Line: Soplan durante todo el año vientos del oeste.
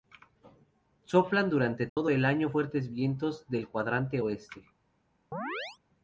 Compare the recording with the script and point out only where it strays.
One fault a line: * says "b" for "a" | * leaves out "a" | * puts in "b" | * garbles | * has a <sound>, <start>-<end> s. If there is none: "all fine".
* has a dropout, 1.9-2.0 s
* puts in "fuertes"
* puts in "cuadrante"
* has a chirp, 5.3-5.8 s